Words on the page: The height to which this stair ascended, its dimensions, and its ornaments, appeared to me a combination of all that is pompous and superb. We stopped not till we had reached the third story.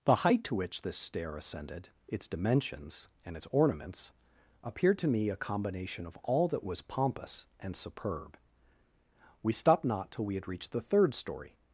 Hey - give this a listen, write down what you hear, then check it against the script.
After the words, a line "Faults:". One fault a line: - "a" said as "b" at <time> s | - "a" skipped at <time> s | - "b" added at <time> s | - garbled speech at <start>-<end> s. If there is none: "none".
The height to which this stair ascended, its dimensions, and its ornaments, appeared to me a combination of all that was pompous and superb. We stopped not till we had reached the third story.
Faults:
- "is" said as "was" at 6.6 s